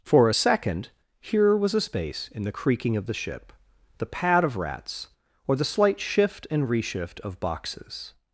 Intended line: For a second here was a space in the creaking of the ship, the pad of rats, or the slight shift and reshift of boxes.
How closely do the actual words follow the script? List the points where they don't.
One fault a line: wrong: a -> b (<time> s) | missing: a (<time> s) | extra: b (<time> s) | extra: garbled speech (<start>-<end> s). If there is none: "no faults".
no faults